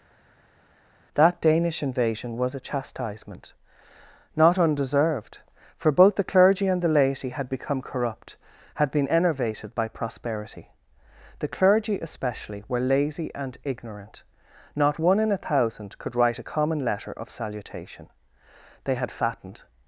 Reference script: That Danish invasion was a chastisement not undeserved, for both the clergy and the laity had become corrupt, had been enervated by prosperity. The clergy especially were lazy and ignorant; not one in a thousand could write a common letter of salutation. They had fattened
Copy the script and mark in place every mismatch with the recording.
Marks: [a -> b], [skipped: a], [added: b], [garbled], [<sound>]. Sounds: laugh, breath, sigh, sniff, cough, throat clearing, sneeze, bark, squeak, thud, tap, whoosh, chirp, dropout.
That Danish invasion was a chastisement not undeserved, for both the clergy and the laity had become corrupt, had been enervated by prosperity. The clergy especially were lazy and ignorant; not one in a thousand could write a common letter of salutation. They had fattened